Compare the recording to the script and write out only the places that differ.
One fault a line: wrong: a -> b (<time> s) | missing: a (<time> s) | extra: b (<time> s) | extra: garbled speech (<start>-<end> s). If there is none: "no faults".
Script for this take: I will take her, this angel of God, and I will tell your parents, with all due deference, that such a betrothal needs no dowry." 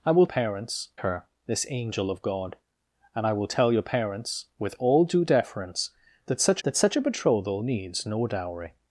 wrong: take -> parents (0.2 s)
extra: that such (6.6 s)